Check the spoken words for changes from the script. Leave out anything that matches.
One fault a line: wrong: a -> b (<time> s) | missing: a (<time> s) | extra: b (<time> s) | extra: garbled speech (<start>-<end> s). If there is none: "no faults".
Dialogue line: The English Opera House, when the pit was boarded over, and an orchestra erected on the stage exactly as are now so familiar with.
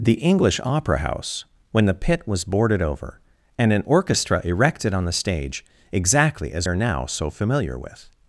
no faults